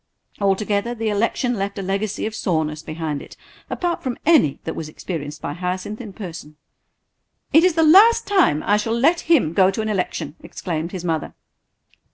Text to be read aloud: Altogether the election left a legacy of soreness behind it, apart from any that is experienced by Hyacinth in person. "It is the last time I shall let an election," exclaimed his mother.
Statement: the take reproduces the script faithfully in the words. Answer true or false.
false